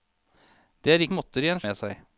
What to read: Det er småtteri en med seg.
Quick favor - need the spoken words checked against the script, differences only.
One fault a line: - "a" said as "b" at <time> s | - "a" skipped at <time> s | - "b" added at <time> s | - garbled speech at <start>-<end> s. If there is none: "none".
none